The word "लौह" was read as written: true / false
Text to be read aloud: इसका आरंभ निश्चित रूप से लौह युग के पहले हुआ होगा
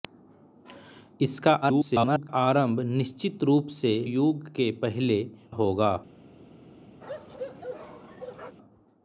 false